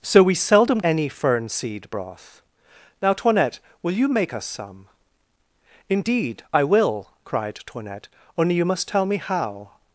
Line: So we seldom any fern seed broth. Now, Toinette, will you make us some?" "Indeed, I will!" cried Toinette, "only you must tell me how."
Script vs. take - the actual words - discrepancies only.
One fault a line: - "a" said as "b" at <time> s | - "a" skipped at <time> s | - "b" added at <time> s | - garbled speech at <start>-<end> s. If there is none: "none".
none